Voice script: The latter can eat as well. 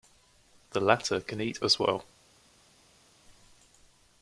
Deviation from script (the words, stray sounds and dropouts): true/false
false